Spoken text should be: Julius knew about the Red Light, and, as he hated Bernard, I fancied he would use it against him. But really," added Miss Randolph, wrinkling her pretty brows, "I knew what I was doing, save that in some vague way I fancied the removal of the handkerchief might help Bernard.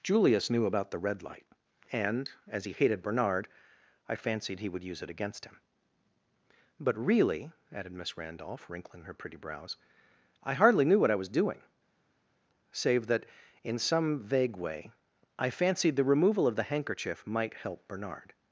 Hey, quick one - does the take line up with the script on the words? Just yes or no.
no